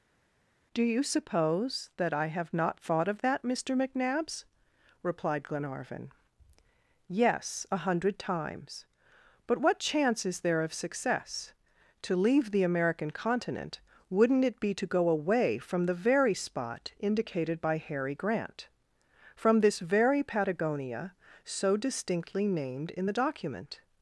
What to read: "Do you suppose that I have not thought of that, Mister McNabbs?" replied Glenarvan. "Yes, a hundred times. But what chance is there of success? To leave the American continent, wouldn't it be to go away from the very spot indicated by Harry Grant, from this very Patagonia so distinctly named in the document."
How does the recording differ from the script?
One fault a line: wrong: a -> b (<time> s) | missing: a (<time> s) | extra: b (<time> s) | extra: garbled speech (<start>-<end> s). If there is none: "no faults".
no faults